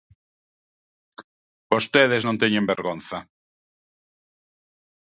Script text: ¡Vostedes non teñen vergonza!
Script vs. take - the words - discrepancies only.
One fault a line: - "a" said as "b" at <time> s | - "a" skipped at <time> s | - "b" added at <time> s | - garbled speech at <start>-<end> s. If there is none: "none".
none